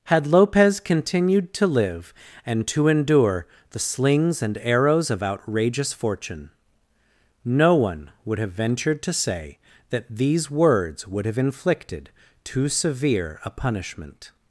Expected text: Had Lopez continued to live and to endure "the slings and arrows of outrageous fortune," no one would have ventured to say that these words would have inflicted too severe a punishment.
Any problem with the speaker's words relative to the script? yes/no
no